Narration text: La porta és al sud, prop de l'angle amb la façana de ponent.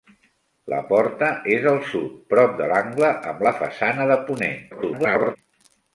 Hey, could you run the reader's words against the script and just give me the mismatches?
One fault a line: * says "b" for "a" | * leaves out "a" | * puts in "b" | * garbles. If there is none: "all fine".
* garbles